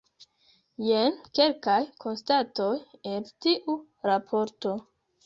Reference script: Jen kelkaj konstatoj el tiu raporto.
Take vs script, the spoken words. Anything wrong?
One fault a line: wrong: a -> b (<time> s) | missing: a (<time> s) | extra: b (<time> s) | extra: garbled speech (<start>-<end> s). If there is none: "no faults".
no faults